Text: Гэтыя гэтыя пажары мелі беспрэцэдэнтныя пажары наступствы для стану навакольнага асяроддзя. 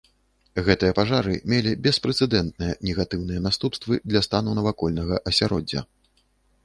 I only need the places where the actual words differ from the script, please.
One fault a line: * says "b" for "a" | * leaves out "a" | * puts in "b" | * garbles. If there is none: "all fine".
* leaves out "гэтыя"
* says "негатыўныя" for "пажары"